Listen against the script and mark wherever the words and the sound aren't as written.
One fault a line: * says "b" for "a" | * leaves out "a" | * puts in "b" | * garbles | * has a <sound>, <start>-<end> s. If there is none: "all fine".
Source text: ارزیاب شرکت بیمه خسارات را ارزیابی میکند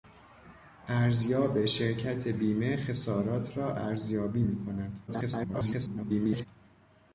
* garbles